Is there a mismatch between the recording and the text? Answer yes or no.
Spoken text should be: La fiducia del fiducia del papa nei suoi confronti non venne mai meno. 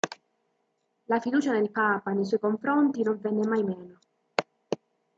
yes